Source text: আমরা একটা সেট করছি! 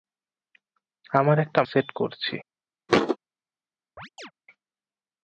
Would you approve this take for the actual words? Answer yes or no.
yes